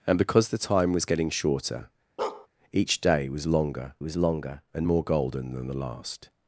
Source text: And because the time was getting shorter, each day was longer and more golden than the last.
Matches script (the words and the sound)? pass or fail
fail